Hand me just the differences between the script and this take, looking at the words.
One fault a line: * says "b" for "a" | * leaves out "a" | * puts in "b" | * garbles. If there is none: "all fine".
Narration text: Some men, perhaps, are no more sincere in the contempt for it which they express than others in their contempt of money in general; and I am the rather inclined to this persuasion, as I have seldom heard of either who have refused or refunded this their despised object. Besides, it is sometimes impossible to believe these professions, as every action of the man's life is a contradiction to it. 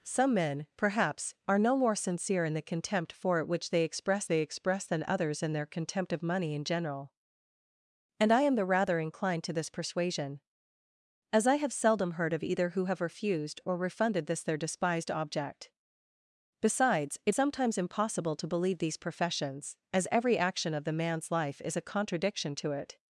* puts in "they express"
* leaves out "is"